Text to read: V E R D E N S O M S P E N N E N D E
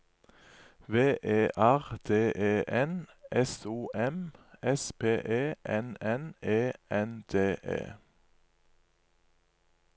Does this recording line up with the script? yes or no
yes